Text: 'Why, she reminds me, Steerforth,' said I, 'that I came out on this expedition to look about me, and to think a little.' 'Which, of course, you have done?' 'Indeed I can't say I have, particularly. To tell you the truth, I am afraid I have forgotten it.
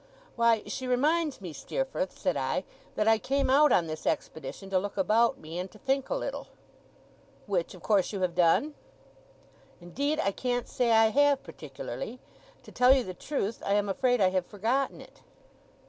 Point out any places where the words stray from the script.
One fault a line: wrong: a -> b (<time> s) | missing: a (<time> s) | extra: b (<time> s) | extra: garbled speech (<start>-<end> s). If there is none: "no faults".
no faults